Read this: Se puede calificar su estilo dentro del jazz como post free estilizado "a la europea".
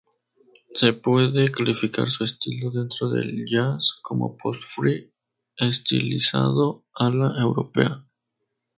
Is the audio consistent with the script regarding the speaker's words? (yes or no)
yes